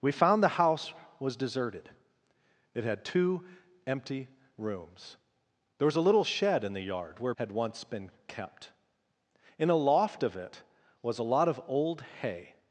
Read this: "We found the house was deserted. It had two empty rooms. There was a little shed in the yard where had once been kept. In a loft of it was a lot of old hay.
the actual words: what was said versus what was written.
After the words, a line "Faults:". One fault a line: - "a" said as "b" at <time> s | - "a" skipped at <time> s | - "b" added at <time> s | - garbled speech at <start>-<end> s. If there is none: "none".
"We found the house was deserted. It had two empty rooms. There was a little shed in the yard where had once been kept. In a loft of it was a lot of old hay.
Faults:
none